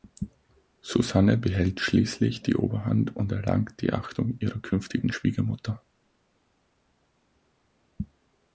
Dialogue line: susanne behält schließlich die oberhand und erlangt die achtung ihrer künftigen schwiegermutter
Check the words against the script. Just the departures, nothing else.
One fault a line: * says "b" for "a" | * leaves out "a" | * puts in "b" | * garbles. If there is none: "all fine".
all fine